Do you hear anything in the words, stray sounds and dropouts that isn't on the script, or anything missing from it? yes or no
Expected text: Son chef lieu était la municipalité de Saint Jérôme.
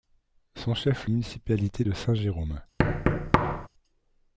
yes